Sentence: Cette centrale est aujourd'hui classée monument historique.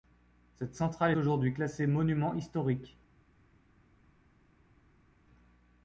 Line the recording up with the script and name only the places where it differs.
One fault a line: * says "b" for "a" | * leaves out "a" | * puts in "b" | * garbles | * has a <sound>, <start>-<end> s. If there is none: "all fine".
* leaves out "est"